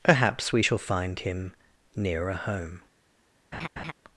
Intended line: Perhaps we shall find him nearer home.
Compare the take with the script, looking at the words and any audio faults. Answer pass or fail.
fail